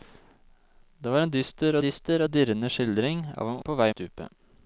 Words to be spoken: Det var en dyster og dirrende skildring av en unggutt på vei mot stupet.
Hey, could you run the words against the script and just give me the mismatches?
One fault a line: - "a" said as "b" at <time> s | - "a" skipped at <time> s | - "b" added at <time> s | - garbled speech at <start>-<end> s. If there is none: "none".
- "dyster" added at 1.8 s
- "unggutt" skipped at 3.6 s
- "mot" skipped at 3.9 s